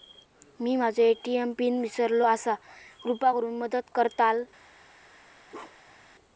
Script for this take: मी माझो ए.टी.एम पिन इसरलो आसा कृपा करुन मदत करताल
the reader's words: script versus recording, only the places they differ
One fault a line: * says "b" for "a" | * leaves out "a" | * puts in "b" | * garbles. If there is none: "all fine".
all fine